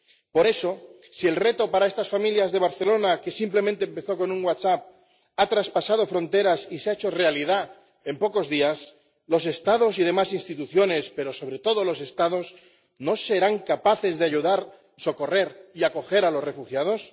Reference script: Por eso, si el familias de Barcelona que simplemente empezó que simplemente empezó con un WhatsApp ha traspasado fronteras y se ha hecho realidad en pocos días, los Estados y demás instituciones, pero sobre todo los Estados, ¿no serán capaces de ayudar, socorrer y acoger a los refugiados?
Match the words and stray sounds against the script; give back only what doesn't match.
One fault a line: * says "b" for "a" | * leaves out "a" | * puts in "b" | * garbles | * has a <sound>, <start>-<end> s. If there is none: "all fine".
* puts in "reto para estas"
* leaves out "que simplemente empezó"